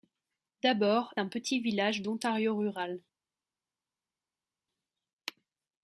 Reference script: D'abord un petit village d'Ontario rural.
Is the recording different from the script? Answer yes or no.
no